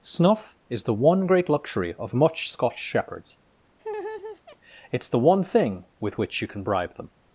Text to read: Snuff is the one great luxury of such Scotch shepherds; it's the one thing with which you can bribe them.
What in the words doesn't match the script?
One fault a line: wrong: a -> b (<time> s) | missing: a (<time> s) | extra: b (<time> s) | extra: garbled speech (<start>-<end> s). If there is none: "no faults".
wrong: such -> much (2.1 s)